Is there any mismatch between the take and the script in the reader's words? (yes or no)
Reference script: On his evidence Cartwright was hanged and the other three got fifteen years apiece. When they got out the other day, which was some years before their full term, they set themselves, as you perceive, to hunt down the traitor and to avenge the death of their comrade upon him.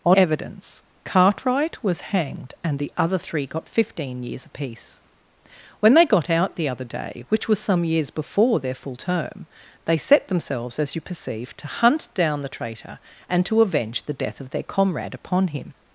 yes